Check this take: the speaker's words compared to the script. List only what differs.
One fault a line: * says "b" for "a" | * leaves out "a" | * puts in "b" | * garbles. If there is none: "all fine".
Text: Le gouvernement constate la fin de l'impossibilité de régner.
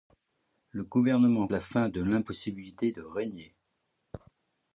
* leaves out "constate"